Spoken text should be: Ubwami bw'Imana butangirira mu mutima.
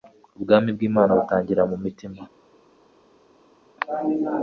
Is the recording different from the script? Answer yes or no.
no